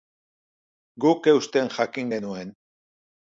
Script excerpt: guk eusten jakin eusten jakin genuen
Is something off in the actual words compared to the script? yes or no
yes